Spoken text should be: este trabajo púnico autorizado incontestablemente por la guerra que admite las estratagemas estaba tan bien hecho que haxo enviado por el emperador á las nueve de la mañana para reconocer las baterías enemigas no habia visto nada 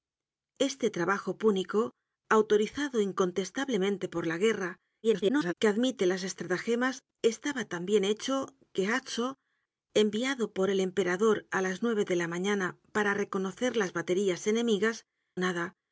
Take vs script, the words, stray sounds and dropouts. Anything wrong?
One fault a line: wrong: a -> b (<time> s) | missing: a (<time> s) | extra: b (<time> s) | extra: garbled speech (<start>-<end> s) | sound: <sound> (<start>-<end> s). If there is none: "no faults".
extra: garbled speech (5.0-5.5 s)
missing: no habia visto (15.0 s)